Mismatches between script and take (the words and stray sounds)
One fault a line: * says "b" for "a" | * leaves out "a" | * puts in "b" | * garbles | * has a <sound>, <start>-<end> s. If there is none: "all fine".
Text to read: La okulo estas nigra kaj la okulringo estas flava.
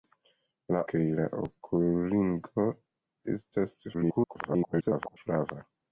* leaves out "okulo estas nigra"
* garbles